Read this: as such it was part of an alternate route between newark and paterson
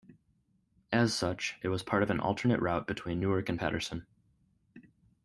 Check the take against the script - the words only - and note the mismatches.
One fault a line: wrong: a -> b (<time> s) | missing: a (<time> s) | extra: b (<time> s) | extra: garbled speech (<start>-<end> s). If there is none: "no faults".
no faults